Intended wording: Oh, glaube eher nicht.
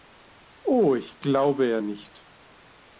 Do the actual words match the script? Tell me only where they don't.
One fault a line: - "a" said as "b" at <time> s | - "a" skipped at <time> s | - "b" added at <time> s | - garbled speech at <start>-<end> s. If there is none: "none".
- "ich" added at 0.9 s